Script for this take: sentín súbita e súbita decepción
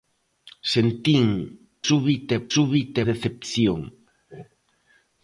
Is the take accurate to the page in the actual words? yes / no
yes